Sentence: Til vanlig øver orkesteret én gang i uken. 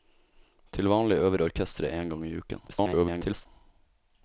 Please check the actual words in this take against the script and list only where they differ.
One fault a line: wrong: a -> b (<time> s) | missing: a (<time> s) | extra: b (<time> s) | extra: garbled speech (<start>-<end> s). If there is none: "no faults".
extra: garbled speech (2.7-3.5 s)